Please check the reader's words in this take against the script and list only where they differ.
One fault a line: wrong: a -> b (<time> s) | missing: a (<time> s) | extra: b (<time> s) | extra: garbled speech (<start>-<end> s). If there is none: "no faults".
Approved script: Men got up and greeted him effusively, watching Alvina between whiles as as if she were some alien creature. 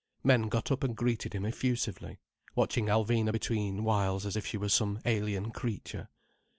missing: as (4.4 s)